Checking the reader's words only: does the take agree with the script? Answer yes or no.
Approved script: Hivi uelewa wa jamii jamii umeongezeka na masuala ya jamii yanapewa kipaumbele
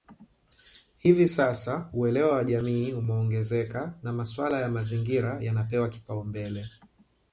no